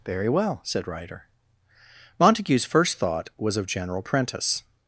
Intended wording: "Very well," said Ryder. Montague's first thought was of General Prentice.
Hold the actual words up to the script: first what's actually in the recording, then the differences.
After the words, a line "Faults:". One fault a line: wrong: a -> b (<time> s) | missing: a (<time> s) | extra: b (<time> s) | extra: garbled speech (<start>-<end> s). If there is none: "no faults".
"Very well," said Ryder. Montague's first thought was of General Prentice.
Faults:
no faults